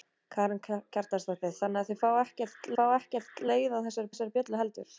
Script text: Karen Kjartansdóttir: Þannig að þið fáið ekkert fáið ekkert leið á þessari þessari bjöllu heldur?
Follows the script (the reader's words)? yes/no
yes